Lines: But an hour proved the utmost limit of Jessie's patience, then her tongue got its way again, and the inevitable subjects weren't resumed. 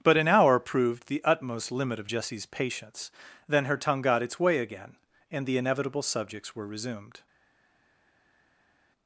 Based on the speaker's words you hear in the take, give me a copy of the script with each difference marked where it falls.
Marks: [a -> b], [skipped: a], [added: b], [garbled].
But an hour proved the utmost limit of Jessie's patience, then her tongue got its way again, and the inevitable subjects [weren't -> were] resumed.